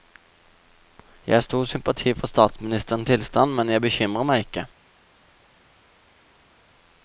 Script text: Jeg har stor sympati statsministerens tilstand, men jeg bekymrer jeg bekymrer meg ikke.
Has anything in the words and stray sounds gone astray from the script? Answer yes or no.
yes